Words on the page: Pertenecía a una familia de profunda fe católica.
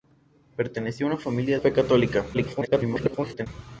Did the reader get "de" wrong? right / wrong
wrong